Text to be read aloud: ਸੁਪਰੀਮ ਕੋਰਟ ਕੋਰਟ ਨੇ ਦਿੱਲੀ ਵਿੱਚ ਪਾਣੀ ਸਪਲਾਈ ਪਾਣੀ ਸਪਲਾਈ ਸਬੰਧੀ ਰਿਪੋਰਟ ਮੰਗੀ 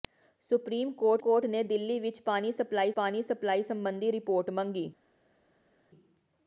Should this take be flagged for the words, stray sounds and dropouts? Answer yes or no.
no